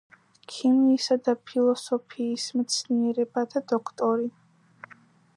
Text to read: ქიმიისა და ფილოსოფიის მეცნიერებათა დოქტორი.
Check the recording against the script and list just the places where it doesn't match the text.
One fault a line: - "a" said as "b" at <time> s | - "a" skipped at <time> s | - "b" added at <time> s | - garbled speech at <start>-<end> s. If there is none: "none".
none